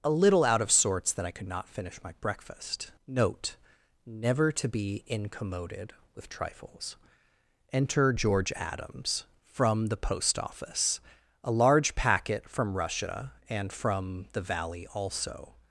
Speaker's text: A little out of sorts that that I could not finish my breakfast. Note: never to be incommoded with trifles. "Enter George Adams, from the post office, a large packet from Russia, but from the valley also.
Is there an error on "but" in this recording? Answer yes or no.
yes